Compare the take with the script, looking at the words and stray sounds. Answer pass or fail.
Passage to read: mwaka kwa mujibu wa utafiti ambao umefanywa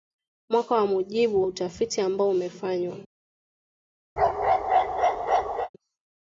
fail